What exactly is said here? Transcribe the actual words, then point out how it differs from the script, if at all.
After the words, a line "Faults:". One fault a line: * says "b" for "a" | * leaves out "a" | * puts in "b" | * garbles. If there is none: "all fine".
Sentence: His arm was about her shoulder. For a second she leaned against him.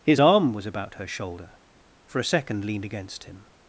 His arm was about her shoulder. For a second leaned against him.
Faults:
* leaves out "she"